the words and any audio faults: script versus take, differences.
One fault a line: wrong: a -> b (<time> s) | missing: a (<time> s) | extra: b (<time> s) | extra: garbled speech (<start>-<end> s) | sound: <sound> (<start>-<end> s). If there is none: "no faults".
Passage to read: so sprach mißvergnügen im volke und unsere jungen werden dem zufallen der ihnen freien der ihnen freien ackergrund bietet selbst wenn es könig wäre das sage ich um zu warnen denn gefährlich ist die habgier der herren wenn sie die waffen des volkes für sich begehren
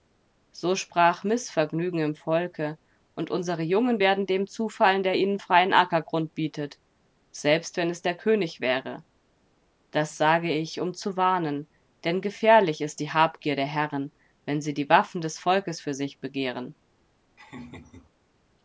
missing: der ihnen freien (5.7 s)
extra: der (8.0 s)
sound: laugh (17.4-18.1 s)